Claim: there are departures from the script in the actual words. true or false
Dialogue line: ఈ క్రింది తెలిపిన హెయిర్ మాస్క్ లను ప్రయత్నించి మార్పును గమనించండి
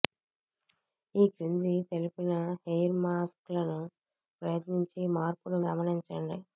false